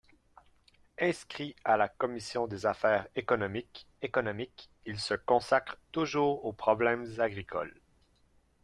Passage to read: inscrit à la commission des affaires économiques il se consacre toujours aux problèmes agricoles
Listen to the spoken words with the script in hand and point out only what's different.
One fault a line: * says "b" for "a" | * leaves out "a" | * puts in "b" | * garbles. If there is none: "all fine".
* puts in "économiques"